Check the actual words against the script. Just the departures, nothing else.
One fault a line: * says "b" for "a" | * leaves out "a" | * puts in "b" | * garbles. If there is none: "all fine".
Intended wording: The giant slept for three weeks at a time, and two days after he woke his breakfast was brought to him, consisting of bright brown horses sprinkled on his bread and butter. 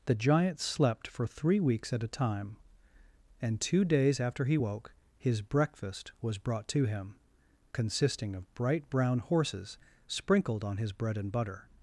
all fine